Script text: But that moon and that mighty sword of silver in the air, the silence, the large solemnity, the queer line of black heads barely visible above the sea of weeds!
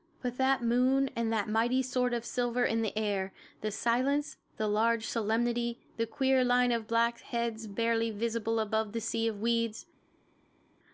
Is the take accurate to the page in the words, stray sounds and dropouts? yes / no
yes